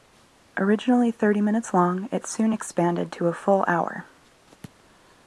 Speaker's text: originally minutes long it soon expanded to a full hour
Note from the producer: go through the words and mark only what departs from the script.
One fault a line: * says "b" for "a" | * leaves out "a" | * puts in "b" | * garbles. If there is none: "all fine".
* puts in "thirty"